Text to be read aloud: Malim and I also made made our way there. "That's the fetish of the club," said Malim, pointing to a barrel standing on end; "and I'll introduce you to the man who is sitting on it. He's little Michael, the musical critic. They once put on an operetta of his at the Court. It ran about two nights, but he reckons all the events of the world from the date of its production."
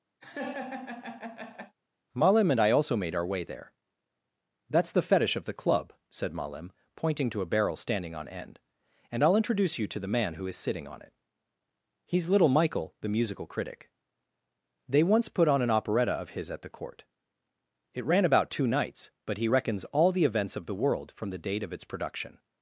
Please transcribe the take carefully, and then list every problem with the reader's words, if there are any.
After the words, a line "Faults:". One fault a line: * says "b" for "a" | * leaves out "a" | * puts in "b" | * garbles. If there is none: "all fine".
Malim and I also made our way there. "That's the fetish of the club," said Malim, pointing to a barrel standing on end; "and I'll introduce you to the man who is sitting on it. He's little Michael, the musical critic. They once put on an operetta of his at the Court. It ran about two nights, but he reckons all the events of the world from the date of its production."
Faults:
* leaves out "made"